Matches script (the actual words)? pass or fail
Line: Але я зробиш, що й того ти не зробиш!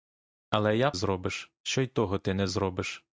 pass